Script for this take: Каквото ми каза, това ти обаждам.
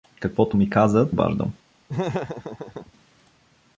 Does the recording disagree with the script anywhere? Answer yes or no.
yes